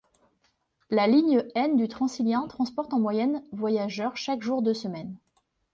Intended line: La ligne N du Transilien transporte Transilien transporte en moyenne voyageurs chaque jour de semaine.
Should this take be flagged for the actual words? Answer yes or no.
yes